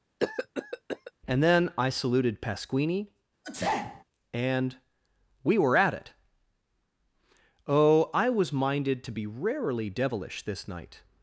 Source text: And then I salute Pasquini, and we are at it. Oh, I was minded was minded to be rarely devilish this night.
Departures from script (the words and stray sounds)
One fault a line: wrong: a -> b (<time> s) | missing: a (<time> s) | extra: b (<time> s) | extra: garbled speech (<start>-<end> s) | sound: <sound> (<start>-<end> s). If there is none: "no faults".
sound: cough (0.2-1.1 s)
wrong: salute -> saluted (1.9 s)
sound: sneeze (3.4-4.0 s)
wrong: are -> were (5.6 s)
missing: was minded (9.0 s)